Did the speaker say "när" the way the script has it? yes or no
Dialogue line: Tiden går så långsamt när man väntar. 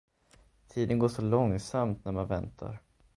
yes